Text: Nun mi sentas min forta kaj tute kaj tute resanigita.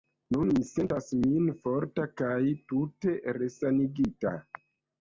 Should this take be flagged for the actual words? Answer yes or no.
yes